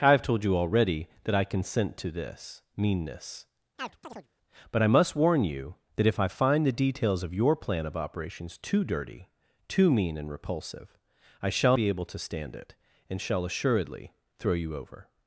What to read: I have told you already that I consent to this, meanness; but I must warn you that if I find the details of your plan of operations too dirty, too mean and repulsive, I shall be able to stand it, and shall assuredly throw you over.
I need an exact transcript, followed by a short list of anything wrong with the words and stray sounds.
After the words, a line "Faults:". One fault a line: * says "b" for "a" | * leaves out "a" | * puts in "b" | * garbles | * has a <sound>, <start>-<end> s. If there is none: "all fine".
I have told you already that I consent to this, meanness; but I must warn you that if I find the details of your plan of operations too dirty, too mean and repulsive, I shall be able to stand it, and shall assuredly throw you over.
Faults:
* has a chirp, 3.8-4.3 s